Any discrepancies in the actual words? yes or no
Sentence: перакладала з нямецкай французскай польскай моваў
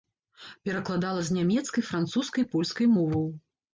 no